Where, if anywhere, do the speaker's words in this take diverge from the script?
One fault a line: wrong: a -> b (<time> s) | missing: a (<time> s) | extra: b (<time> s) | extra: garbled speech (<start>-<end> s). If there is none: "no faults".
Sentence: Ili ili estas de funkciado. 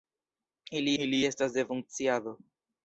no faults